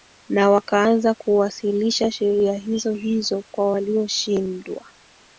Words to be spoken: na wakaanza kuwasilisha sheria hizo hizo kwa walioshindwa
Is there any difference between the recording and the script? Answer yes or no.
no